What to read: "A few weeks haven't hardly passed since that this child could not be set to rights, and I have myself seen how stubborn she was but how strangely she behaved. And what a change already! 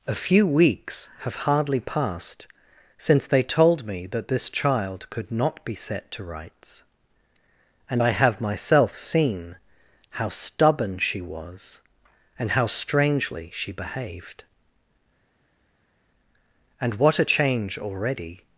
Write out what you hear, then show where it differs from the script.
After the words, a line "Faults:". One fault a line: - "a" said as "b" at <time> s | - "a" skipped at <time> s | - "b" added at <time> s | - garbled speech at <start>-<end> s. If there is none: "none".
"A few weeks have hardly passed since they told me that this child could not be set to rights, and I have myself seen how stubborn she was and how strangely she behaved. And what a change already!
Faults:
- "haven't" said as "have" at 1.2 s
- "they told me" added at 3.3 s
- "but" said as "and" at 12.4 s